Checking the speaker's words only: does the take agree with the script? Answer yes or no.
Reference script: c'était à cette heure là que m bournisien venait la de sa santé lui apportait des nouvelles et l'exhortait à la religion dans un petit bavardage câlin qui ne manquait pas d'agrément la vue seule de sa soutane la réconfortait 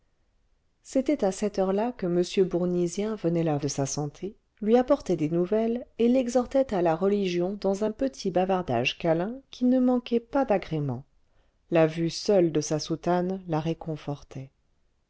yes